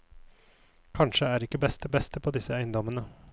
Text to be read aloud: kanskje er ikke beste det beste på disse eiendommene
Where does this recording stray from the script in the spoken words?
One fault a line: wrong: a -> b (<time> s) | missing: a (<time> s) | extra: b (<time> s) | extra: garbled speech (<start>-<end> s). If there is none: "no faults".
no faults